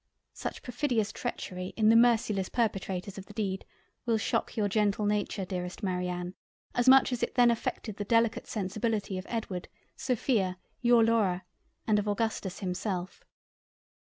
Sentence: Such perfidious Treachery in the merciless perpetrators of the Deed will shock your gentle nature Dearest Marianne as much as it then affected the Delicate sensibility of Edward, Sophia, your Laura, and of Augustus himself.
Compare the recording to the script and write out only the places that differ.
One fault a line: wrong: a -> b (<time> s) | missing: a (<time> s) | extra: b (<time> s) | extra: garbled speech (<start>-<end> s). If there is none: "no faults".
no faults